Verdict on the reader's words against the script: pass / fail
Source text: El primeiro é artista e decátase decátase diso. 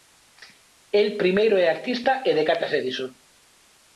fail